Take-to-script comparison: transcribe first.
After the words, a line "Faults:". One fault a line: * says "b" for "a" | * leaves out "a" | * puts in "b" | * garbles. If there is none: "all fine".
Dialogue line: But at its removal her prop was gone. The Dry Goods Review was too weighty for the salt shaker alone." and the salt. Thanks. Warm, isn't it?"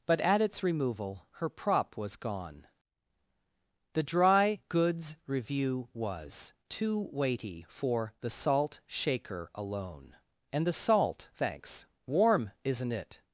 But at its removal her prop was gone. The Dry Goods Review was too weighty for the salt shaker alone." and the salt. Thanks. Warm, isn't it?"
Faults:
all fine